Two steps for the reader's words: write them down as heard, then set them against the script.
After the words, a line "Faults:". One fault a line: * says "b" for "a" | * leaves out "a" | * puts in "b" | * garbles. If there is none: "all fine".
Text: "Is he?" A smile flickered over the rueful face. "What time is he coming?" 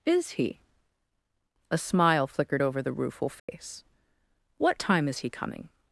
"Is he?" A smile flickered over the rueful face. "What time is he coming?"
Faults:
all fine